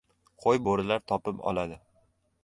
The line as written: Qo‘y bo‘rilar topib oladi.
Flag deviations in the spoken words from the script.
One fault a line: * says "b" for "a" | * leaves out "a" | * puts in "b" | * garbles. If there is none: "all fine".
all fine